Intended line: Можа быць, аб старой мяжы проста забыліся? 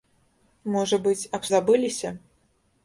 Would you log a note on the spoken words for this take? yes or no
yes